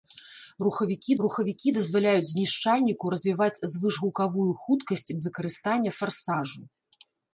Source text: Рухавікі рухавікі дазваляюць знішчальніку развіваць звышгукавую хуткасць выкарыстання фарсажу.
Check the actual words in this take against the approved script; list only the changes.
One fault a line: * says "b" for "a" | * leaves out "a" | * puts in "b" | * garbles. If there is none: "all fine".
all fine